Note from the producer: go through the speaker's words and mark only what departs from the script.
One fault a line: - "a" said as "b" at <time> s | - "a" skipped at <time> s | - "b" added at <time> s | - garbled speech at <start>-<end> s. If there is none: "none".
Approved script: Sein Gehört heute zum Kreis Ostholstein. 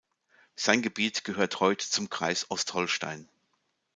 - "Gebiet" added at 0.8 s